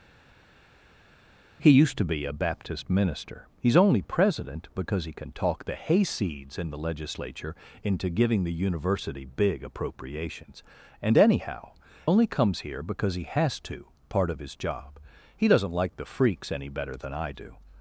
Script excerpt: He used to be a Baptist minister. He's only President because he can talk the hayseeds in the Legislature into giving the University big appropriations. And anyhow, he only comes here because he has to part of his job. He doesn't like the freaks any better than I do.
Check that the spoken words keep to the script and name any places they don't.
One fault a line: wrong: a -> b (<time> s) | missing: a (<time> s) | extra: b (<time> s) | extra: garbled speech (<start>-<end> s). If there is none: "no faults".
missing: he (11.7 s)